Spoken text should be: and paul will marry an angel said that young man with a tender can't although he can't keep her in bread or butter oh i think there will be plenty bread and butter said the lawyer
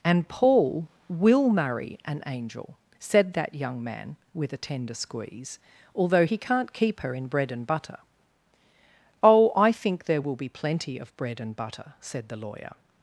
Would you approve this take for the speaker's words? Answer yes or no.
no